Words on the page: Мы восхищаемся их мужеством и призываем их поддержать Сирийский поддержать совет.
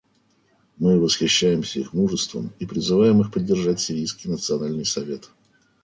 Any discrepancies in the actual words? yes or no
yes